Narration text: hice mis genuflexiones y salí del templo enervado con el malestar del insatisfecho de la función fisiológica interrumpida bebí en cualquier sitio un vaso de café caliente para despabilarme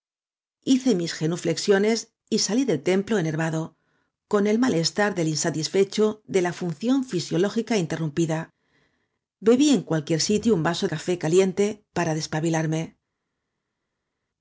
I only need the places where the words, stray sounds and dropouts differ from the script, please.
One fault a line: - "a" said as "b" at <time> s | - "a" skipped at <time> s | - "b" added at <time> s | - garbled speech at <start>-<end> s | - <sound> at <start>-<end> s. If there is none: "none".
- "de" skipped at 10.9 s